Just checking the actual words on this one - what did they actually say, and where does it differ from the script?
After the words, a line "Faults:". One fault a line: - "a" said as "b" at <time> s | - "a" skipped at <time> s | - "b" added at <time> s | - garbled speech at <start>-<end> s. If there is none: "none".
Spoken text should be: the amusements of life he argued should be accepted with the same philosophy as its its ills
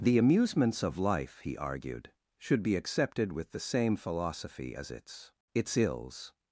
the amusements of life he argued should be accepted with the same philosophy as its its ills
Faults:
none